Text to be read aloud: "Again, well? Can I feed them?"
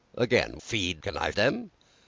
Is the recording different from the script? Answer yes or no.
yes